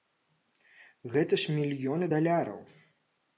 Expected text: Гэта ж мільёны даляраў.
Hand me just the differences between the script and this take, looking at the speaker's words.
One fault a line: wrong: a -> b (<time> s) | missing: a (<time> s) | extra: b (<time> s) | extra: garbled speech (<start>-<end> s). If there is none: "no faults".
no faults